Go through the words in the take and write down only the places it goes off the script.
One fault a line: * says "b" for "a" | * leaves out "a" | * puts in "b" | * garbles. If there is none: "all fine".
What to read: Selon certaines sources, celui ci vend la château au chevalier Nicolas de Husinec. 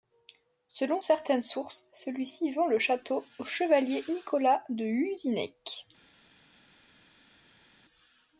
* says "le" for "la"